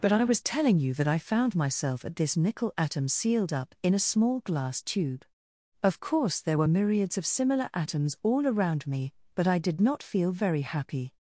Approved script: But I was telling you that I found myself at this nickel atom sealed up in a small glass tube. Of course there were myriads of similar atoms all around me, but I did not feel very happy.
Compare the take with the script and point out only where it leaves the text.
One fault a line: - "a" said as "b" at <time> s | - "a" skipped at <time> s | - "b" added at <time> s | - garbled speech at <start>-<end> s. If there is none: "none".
none